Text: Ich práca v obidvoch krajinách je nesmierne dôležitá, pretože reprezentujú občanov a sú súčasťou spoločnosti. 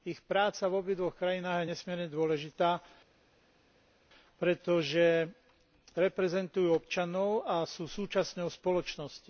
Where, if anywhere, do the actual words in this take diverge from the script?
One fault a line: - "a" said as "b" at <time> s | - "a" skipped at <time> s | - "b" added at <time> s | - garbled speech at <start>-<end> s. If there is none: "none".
none